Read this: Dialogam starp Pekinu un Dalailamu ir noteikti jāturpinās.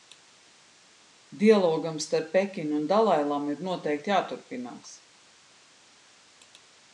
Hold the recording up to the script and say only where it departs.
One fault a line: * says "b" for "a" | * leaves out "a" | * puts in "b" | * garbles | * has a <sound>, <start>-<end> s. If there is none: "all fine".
all fine